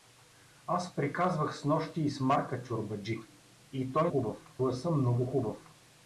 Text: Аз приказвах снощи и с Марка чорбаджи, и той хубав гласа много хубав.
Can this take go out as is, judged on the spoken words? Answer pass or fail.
pass